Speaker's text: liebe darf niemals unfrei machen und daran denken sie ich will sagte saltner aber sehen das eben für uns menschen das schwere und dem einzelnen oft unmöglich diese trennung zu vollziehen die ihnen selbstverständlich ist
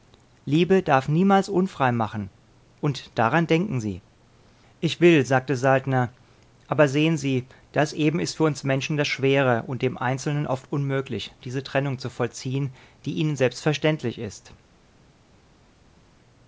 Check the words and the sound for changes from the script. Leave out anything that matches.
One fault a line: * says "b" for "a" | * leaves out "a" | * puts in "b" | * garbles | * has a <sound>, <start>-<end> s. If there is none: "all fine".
* puts in "sie"
* puts in "ist"